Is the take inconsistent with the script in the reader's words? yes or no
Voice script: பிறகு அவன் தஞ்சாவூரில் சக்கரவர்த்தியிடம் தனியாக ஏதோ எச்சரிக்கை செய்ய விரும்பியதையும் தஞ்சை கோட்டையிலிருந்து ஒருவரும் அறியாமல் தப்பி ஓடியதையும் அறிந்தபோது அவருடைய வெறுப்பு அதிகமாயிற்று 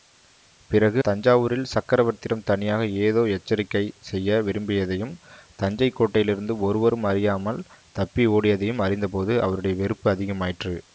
yes